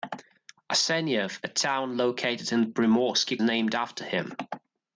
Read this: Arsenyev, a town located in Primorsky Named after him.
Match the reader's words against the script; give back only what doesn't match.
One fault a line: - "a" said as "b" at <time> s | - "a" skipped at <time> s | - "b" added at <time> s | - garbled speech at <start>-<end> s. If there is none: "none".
none